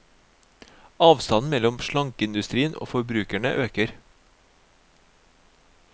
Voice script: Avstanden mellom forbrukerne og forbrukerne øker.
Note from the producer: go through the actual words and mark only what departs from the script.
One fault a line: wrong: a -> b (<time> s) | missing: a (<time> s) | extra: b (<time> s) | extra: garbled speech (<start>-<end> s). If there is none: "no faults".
wrong: forbrukerne -> slankeindustrien (1.8 s)